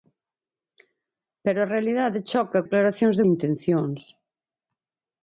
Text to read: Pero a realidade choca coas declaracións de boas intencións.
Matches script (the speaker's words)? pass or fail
fail